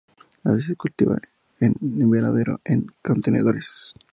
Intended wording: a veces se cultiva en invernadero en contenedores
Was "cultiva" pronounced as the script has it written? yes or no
yes